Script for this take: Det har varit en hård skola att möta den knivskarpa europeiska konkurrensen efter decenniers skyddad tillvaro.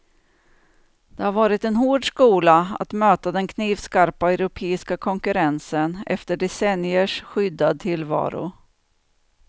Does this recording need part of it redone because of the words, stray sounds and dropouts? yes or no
no